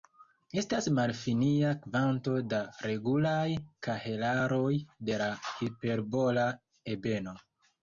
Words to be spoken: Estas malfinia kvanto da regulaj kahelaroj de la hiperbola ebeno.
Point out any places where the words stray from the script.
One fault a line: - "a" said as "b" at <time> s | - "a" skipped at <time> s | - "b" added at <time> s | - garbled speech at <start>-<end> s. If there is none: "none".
none